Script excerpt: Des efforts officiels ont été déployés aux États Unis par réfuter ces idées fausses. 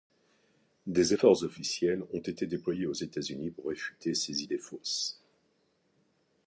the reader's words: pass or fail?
fail